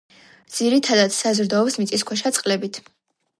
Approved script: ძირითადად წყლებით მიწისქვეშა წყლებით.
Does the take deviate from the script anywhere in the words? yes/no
yes